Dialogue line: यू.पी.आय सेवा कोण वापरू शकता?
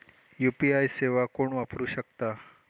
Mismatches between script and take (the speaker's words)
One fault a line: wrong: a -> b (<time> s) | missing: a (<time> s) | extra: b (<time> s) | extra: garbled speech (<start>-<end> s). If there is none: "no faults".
no faults